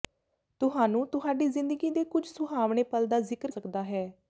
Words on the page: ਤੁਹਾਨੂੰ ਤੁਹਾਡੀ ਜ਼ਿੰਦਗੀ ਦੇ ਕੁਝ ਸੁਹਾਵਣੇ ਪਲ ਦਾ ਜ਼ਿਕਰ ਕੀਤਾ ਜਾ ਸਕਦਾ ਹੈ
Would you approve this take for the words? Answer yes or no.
no